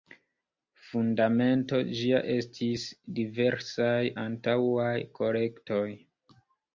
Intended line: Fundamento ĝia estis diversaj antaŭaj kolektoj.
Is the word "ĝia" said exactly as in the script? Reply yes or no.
yes